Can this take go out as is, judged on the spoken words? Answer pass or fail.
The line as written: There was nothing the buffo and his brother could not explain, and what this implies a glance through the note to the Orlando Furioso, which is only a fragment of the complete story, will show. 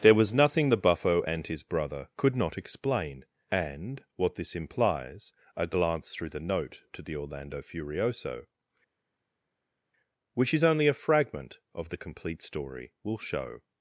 pass